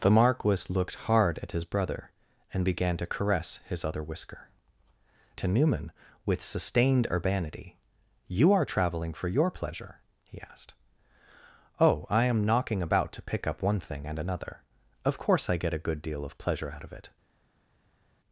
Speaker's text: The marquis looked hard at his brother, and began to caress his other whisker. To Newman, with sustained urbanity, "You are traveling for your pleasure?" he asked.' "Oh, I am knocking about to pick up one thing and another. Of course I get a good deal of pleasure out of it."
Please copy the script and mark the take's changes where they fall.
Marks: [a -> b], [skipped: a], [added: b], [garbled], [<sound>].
The marquis looked hard at his brother, and began to caress his other whisker. To Newman, with sustained urbanity, "You are traveling for your pleasure?" he asked.' "Oh, I am knocking about to pick up one thing and another. Of course I get a good deal of pleasure out of it."